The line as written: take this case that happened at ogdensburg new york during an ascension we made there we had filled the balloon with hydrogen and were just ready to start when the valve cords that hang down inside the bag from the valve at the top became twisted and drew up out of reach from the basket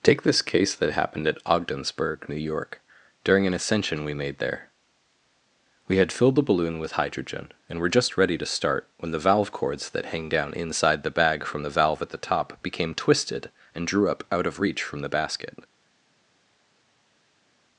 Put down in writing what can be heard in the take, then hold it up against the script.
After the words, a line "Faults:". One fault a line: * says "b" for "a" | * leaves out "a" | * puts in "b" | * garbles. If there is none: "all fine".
take this case that happened at ogdensburg new york during an ascension we made there we had filled the balloon with hydrogen and were just ready to start when the valve cords that hang down inside the bag from the valve at the top became twisted and drew up out of reach from the basket
Faults:
all fine